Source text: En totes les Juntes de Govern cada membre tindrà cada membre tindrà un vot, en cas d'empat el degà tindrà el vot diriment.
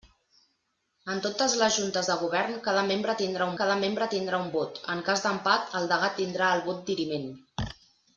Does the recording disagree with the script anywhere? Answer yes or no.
no